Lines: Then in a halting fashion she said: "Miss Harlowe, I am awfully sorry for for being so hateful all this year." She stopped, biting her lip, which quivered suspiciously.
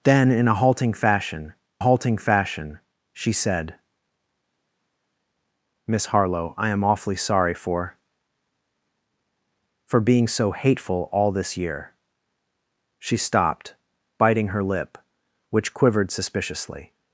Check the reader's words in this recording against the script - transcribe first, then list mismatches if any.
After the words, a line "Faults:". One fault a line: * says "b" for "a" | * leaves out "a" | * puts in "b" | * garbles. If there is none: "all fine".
Then in a halting fashion halting fashion she said: "Miss Harlowe, I am awfully sorry for for being so hateful all this year." She stopped, biting her lip, which quivered suspiciously.
Faults:
* puts in "halting fashion"